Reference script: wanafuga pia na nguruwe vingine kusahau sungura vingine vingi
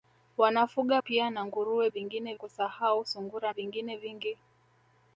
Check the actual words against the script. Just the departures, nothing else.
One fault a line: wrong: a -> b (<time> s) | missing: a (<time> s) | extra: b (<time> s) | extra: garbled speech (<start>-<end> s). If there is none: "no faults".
no faults